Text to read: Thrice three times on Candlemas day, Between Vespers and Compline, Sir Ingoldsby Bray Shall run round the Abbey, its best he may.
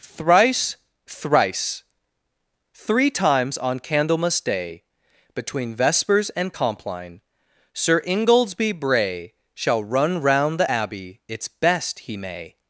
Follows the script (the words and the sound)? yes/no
no